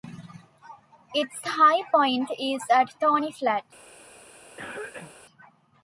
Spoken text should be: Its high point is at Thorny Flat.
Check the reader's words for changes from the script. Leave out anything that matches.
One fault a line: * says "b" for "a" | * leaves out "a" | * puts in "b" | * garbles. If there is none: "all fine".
all fine